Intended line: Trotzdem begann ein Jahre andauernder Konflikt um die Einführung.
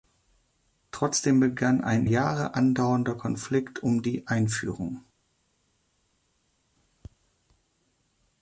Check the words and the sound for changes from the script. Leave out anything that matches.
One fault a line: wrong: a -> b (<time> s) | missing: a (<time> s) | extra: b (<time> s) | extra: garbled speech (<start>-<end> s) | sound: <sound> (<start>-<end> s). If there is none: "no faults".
no faults